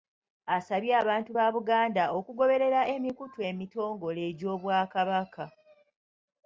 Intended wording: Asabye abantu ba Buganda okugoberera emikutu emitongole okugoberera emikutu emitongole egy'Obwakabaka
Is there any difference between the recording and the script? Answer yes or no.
yes